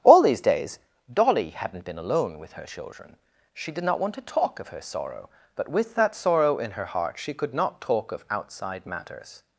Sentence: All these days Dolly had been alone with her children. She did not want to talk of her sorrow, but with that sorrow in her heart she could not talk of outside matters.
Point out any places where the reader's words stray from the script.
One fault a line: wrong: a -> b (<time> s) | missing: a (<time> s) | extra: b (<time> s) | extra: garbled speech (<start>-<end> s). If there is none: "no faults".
wrong: had -> hadn't (1.5 s)